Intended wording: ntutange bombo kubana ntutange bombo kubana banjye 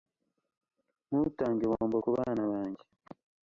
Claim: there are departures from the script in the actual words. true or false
true